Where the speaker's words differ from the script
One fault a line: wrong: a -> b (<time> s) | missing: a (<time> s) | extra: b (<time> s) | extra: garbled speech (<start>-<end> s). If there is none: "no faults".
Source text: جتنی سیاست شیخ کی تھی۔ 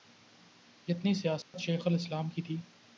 extra: الاسلام (1.9 s)